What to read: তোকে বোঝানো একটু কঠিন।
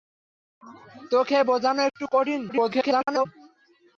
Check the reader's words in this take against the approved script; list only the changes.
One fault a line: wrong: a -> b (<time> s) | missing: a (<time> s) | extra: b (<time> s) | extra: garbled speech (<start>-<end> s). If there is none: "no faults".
extra: garbled speech (2.5-3.3 s)